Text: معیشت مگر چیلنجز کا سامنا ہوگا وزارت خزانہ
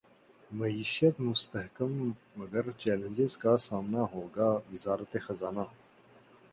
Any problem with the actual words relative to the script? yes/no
yes